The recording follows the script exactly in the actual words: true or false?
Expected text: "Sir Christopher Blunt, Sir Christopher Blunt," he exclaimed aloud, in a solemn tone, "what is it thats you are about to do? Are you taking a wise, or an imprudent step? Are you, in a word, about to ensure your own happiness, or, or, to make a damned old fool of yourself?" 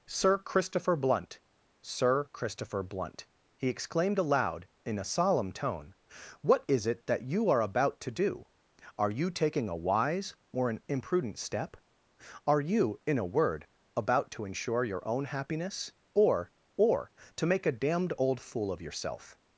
false